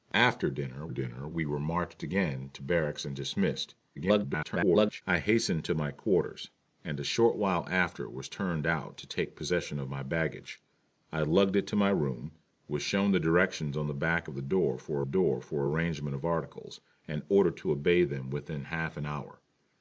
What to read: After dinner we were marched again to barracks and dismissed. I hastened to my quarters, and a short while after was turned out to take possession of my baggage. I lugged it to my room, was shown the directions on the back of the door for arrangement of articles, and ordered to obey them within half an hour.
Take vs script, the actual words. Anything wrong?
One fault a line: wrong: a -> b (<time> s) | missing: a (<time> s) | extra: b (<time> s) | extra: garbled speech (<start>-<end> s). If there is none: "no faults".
extra: dinner (0.9 s)
extra: garbled speech (4.0-5.0 s)
extra: door for (15.0 s)